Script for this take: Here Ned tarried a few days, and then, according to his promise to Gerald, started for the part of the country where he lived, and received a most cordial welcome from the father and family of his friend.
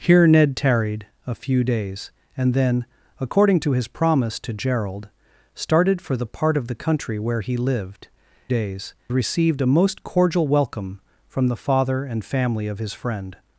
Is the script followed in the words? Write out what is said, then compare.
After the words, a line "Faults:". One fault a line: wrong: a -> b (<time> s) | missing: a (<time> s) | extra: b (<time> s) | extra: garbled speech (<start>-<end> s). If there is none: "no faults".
Here Ned tarried a few days, and then, according to his promise to Gerald, started for the part of the country where he lived, days received a most cordial welcome from the father and family of his friend.
Faults:
wrong: and -> days (8.5 s)